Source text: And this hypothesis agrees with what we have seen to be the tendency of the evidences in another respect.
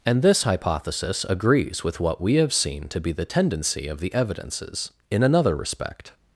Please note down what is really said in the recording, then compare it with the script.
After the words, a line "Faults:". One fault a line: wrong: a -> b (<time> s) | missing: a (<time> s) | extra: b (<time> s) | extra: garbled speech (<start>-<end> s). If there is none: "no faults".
And this hypothesis agrees with what we have seen to be the tendency of the evidences in another respect.
Faults:
no faults